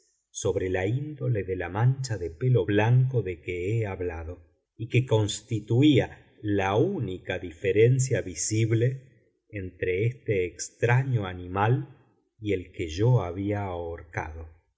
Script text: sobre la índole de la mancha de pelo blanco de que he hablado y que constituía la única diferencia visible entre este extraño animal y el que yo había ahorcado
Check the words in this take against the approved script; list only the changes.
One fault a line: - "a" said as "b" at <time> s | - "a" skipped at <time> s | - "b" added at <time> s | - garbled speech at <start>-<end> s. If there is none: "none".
none